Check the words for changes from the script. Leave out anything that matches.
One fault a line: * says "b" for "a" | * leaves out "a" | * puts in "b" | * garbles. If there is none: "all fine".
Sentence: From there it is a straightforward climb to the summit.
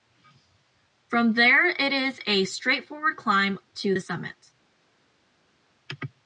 all fine